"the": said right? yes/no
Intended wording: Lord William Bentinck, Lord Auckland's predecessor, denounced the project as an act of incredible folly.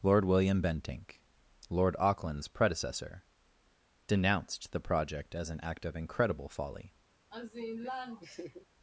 yes